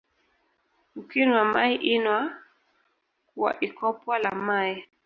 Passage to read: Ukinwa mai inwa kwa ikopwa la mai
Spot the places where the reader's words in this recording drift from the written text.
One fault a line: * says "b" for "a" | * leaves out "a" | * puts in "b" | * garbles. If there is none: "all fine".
all fine